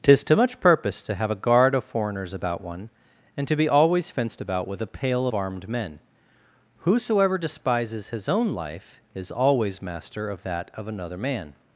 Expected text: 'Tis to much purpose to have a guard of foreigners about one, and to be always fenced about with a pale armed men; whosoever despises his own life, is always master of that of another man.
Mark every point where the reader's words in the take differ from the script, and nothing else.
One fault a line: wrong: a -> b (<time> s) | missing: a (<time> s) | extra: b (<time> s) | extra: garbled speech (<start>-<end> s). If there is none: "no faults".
no faults